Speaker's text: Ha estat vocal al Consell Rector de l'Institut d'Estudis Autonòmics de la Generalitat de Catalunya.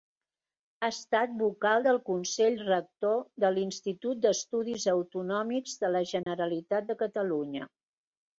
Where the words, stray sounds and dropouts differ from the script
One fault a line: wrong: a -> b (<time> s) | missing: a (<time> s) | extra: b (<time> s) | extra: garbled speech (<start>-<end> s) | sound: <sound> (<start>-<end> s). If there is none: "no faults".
wrong: al -> del (1.9 s)
sound: dropout (6.2-6.3 s)